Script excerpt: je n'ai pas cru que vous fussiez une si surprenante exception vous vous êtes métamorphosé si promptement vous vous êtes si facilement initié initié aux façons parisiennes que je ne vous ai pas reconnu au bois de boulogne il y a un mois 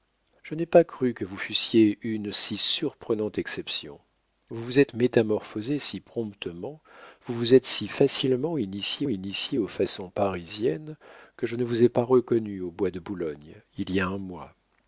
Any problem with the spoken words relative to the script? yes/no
no